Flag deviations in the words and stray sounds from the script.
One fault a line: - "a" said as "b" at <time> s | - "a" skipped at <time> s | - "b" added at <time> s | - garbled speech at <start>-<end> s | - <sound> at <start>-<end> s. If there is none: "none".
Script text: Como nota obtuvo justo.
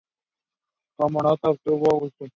none